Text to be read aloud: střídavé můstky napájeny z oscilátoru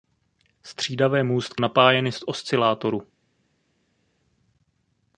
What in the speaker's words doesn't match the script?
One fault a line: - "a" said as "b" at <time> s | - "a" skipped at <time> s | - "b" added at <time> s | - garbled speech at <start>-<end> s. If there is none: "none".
none